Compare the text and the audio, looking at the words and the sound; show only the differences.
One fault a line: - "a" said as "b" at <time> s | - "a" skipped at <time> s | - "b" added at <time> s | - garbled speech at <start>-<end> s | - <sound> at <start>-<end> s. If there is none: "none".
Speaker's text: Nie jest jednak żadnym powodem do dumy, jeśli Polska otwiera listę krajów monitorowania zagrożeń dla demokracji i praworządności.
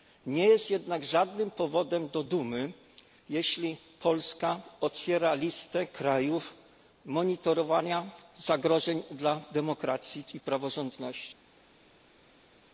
none